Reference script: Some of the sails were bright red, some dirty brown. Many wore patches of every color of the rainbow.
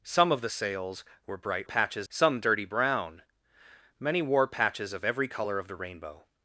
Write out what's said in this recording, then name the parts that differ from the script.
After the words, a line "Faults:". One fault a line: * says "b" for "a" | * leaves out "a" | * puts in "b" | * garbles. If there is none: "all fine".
Some of the sails were bright patches, some dirty brown. Many wore patches of every color of the rainbow.
Faults:
* says "patches" for "red"